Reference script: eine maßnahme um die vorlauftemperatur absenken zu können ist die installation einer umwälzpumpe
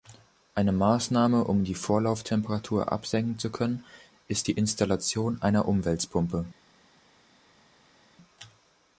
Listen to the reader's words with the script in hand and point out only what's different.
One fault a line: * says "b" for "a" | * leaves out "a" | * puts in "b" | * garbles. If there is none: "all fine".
all fine